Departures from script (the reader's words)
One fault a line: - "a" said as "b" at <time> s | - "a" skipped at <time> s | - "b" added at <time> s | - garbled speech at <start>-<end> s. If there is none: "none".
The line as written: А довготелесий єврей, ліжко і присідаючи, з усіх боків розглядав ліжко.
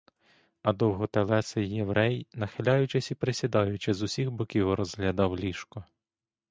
- "ліжко" said as "нахиляючись" at 2.3 s